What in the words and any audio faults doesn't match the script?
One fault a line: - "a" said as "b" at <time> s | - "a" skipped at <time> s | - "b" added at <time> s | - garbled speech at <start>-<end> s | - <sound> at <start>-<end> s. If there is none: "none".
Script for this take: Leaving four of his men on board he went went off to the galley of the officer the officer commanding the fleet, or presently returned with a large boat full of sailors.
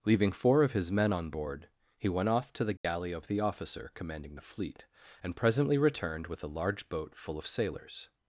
- "went" skipped at 2.3 s
- dropout at 2.8-2.8 s
- "the officer" skipped at 3.9 s
- "or" said as "and" at 5.2 s